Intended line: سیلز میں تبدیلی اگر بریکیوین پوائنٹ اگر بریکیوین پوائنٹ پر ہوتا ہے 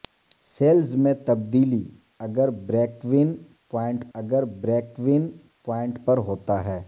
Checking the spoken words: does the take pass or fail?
pass